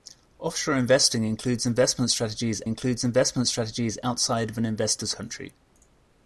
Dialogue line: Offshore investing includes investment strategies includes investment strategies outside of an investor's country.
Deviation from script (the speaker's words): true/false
false